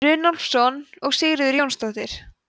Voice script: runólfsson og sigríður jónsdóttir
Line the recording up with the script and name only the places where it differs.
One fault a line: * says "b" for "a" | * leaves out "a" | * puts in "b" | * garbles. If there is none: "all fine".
all fine